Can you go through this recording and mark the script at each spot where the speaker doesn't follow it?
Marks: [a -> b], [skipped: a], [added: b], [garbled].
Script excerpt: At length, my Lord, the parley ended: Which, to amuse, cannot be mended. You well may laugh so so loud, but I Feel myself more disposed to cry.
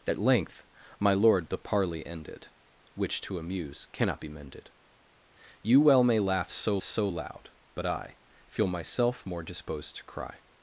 At length, my Lord, the parley ended: Which, to amuse, cannot be mended. You well may laugh so so loud, but I Feel myself more disposed to cry.